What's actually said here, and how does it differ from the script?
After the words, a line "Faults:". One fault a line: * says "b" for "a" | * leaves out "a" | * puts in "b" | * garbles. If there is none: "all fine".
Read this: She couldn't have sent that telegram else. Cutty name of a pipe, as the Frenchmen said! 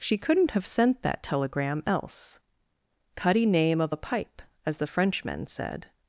She couldn't have sent that telegram else. Cutty name of a pipe, as the Frenchmen said!
Faults:
all fine